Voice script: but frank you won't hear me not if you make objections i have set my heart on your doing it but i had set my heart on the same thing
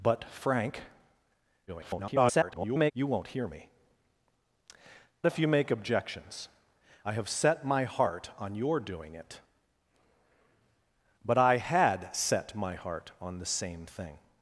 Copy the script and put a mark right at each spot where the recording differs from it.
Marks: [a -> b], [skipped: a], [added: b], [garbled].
but frank [garbled] you won't hear me [skipped: not] if you make objections i have set my heart on your doing it but i had set my heart on the same thing